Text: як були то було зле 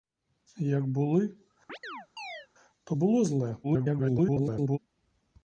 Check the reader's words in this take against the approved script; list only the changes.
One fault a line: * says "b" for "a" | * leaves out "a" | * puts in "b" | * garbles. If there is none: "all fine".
* garbles